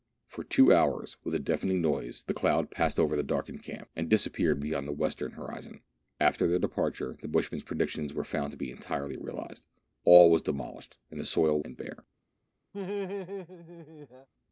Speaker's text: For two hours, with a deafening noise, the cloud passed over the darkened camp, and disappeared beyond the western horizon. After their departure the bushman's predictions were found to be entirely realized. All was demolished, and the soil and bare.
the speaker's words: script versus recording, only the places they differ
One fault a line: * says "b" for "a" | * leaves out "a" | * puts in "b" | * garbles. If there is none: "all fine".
all fine